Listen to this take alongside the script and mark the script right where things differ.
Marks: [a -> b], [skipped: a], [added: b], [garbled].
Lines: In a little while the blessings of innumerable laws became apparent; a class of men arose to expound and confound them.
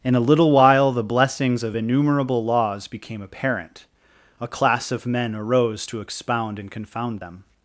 In a little while the blessings of innumerable laws became apparent; a class of men arose to expound and confound them.